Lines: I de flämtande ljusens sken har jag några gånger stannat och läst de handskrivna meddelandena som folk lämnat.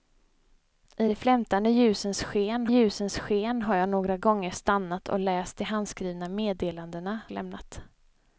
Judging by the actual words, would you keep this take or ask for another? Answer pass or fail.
fail